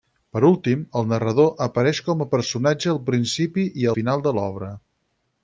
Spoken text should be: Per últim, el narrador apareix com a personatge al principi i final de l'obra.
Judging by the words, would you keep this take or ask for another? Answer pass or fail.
pass